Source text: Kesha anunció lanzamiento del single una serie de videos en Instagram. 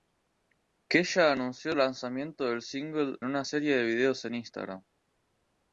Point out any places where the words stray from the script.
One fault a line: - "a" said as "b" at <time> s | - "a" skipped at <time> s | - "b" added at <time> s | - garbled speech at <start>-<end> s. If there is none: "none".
none